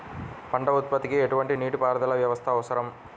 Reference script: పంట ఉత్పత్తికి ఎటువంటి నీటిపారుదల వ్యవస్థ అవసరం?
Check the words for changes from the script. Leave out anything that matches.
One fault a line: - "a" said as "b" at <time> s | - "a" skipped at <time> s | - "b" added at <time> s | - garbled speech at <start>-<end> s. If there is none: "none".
none